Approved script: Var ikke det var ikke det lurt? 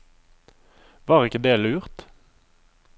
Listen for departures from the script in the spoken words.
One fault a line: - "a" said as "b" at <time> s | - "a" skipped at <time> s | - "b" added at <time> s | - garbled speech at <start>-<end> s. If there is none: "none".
- "var ikke det" skipped at 1.6 s